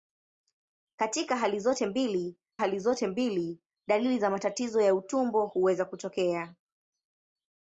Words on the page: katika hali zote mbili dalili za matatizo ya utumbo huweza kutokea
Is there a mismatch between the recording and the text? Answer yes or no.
yes